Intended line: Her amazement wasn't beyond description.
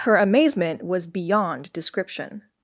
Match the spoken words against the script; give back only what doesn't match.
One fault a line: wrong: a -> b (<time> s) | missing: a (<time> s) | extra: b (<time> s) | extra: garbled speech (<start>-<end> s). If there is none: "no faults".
wrong: wasn't -> was (0.8 s)